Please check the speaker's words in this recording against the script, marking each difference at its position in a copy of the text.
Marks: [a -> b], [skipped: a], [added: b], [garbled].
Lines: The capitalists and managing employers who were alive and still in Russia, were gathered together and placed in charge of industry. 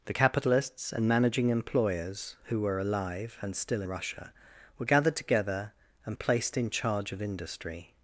The capitalists and managing employers who were alive and still [skipped: in] Russia, were gathered together and placed in charge of industry.